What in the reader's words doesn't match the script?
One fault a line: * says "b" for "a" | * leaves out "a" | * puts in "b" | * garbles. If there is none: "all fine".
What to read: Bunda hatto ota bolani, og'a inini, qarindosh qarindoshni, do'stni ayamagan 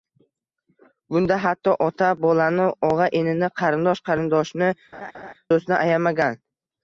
all fine